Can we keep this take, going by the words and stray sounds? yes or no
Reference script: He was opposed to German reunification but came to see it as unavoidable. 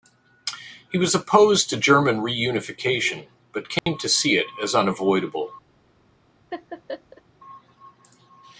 no